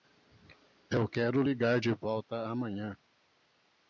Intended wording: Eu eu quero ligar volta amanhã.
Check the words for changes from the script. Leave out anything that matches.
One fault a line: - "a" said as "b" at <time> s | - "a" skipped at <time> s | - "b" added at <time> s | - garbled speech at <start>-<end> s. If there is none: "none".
- "eu" skipped at 1.1 s
- "de" added at 1.8 s